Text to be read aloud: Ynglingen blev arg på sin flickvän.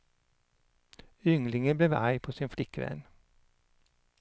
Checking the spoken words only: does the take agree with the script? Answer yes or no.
yes